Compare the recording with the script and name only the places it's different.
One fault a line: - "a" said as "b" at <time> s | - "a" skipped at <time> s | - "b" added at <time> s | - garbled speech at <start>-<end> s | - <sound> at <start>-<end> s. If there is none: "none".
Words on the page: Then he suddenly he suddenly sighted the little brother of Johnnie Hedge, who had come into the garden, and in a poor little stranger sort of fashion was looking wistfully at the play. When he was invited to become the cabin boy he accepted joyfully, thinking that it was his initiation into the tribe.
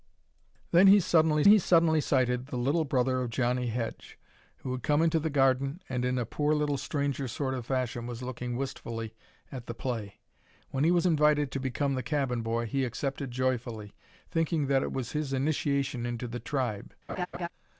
- laugh at 17.1-17.5 s